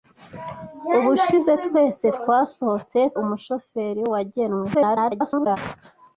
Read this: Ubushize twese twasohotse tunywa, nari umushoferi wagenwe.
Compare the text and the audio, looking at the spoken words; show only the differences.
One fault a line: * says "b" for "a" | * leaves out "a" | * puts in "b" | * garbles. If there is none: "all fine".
* leaves out "tunywa nari"
* garbles